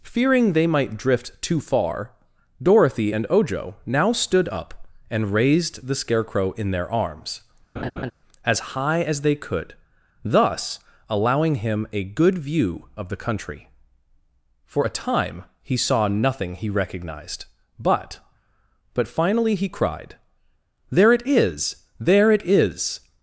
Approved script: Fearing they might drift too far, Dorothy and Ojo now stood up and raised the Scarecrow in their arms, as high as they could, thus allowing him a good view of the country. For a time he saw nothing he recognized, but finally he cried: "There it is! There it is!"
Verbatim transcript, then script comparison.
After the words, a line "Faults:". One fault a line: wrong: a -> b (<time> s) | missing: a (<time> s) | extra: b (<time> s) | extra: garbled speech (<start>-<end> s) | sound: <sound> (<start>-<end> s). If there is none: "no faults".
Fearing they might drift too far, Dorothy and Ojo now stood up and raised the Scarecrow in their arms, as high as they could, thus allowing him a good view of the country. For a time he saw nothing he recognized, but but finally he cried: "There it is! There it is!"
Faults:
sound: laugh (7.8-8.1 s)
extra: but (18.9 s)